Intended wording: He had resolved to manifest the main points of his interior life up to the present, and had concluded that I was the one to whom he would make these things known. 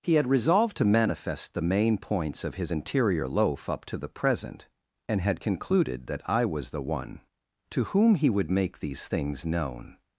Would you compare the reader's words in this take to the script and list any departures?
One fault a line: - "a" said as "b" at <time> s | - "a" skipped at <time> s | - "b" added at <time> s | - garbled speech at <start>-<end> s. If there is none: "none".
- "life" said as "loaf" at 3.3 s